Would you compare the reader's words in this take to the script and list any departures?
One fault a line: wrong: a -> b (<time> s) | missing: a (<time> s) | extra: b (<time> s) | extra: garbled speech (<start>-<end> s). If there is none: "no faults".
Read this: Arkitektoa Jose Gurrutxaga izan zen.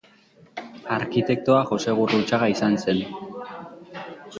no faults